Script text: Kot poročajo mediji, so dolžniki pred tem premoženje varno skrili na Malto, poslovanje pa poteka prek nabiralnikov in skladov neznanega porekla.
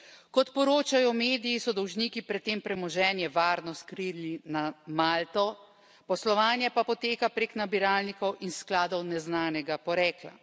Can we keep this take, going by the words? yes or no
yes